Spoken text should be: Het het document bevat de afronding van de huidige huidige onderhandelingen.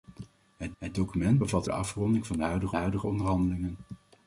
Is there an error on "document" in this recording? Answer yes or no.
no